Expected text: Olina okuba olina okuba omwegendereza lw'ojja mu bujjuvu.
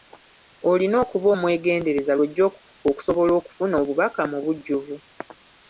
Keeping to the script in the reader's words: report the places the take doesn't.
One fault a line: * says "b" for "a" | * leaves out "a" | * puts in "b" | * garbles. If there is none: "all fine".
* says "omwegendereza lw'ojja okusobola okufuna obubaka" for "olina okuba omwegendereza lw'ojja"